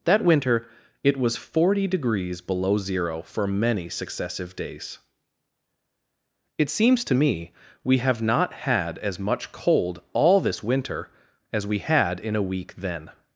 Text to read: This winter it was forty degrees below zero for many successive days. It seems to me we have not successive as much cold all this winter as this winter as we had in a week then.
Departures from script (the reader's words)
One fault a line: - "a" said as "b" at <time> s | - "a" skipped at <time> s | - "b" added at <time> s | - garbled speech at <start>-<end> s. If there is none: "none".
- "This" said as "That" at 0.1 s
- "successive" said as "had" at 8.5 s
- "this winter as" skipped at 11.7 s